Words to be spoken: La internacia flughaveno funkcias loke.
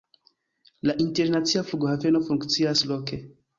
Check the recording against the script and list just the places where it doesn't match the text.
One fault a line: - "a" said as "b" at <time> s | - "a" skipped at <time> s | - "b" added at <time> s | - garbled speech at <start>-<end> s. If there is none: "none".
none